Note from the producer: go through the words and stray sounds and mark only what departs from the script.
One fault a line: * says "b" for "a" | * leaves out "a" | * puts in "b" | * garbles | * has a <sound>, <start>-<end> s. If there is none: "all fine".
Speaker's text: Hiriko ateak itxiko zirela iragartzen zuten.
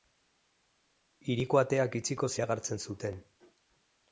* leaves out "zirela"